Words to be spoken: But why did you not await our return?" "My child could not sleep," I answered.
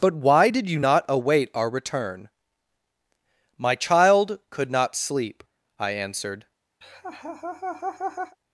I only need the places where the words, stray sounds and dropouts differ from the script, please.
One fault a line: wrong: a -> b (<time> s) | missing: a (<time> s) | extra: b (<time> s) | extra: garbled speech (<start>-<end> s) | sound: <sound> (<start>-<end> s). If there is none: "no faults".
sound: laugh (6.8-8.4 s)